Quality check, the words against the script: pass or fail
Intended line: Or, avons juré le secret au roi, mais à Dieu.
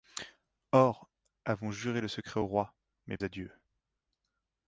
pass